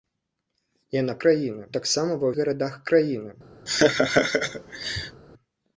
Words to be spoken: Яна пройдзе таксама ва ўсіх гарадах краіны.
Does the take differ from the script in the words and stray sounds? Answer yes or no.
yes